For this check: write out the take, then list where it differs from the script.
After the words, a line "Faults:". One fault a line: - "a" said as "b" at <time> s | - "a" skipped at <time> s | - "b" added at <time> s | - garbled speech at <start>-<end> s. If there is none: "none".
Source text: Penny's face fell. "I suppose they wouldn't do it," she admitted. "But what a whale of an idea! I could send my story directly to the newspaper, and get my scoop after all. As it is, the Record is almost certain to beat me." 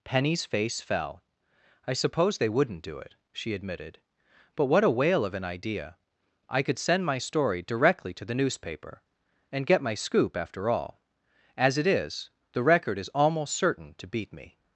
Penny's face fell. "I suppose they wouldn't do it," she admitted. "But what a whale of an idea! I could send my story directly to the newspaper, and get my scoop after all. As it is, the Record is almost certain to beat me."
Faults:
none